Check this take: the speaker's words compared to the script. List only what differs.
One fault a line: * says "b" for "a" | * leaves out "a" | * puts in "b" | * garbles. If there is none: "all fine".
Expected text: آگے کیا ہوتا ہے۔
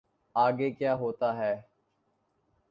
all fine